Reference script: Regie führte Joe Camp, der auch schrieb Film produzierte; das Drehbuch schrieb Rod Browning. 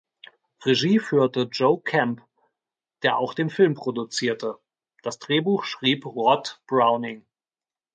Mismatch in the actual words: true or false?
true